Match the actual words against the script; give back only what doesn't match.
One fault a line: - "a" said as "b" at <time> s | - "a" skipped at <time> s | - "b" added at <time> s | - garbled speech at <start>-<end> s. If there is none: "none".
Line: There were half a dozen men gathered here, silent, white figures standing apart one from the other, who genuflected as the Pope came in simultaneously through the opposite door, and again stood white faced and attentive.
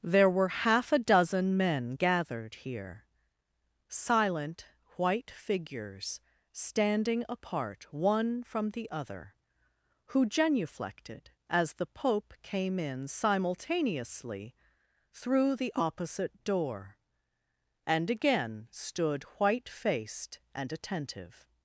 none